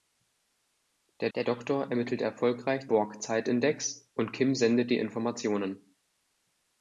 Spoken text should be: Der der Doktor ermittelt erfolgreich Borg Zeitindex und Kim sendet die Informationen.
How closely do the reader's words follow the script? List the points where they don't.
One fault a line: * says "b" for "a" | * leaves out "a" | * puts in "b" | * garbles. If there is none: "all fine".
all fine